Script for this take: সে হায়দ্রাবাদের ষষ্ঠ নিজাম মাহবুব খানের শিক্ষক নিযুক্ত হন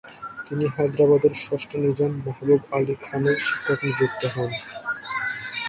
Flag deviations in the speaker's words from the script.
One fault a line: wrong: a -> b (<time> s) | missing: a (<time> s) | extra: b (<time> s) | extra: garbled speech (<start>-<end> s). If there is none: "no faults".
wrong: সে -> তিনি (0.5 s)
extra: আলী (2.8 s)